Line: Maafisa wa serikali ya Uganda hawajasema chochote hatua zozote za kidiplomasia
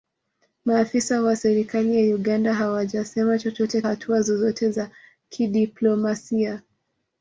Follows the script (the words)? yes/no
yes